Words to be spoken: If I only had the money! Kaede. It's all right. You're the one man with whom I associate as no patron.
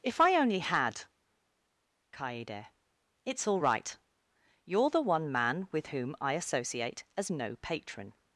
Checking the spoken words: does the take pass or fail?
fail